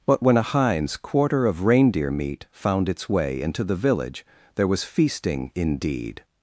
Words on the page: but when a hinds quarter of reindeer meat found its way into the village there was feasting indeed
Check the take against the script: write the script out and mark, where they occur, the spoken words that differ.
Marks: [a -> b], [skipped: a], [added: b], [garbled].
but when a hinds quarter of reindeer meat found its way into the village there was feasting indeed